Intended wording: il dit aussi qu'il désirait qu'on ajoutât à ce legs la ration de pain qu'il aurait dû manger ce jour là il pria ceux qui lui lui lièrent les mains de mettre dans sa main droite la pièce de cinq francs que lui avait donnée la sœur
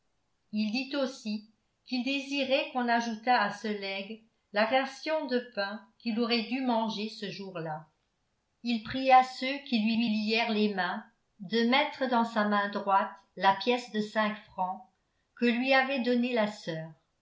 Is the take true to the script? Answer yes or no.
yes